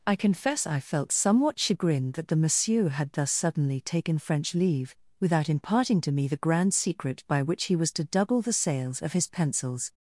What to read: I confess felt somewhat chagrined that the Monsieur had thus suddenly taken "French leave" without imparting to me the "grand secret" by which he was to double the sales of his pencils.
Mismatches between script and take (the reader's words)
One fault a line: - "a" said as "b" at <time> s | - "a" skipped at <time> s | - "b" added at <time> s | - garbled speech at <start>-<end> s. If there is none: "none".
- "I" added at 0.7 s